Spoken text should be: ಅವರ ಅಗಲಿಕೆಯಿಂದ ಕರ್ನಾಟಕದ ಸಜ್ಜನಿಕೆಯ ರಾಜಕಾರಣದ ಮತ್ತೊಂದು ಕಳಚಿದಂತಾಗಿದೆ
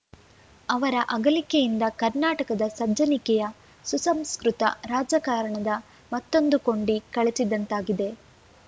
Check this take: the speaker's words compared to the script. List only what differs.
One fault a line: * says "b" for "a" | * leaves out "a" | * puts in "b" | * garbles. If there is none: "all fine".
* puts in "ಸುಸಂಸ್ಕೃತ"
* puts in "ಕೊಂಡಿ"